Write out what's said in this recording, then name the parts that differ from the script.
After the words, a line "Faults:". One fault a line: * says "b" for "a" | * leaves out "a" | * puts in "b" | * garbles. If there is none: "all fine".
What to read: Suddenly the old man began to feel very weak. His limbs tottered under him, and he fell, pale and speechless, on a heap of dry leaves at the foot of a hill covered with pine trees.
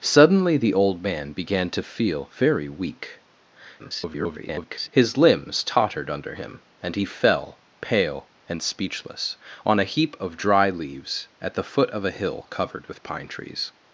Suddenly the old man began to feel very weak. [garbled] His limbs tottered under him, and he fell, pale and speechless, on a heap of dry leaves at the foot of a hill covered with pine trees.
Faults:
* garbles